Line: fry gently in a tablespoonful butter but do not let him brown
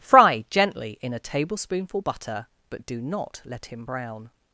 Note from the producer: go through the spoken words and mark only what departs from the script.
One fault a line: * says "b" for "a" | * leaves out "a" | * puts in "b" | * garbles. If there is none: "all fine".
all fine